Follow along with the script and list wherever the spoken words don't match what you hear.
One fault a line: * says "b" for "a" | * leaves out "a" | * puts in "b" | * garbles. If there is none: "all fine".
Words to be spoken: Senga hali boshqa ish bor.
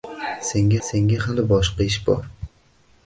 * puts in "senga"